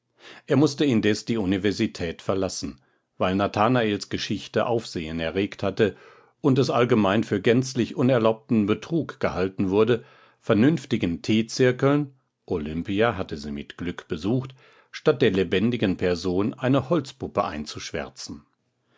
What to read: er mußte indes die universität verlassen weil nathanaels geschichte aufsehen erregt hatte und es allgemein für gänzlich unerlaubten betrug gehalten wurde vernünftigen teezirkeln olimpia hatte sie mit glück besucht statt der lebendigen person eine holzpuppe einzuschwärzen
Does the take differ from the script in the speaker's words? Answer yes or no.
no